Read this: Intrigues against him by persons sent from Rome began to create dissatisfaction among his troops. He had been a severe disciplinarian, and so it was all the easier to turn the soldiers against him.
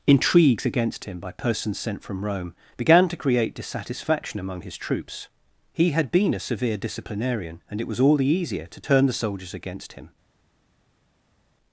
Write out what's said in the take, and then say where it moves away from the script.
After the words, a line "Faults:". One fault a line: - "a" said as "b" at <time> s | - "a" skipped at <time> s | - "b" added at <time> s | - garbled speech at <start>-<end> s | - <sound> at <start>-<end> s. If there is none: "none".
Intrigues against him by persons sent from Rome began to create dissatisfaction among his troops. He had been a severe disciplinarian, and it was all the easier to turn the soldiers against him.
Faults:
- "so" skipped at 7.8 s